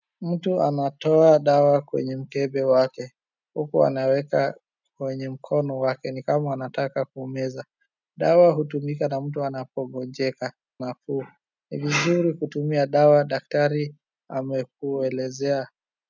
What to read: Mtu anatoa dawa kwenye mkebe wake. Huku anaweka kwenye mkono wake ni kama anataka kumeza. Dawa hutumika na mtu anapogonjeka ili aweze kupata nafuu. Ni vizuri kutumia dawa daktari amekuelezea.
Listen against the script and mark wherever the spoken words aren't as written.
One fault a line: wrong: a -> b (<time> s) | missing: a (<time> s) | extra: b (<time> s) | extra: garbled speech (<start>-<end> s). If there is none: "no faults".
missing: ili aweze kupata (10.5 s)